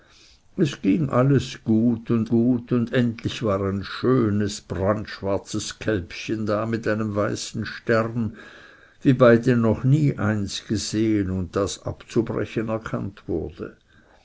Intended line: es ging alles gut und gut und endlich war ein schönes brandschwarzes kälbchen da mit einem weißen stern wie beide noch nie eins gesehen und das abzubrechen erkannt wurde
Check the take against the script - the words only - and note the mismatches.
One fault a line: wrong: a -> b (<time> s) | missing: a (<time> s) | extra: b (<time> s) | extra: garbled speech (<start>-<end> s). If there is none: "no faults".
no faults